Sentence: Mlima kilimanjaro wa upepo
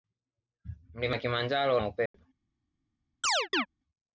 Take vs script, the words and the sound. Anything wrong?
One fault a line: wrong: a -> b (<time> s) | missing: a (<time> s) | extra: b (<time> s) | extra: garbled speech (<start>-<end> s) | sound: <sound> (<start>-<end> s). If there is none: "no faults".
sound: dropout (2.1-2.1 s)
sound: chirp (3.2-3.7 s)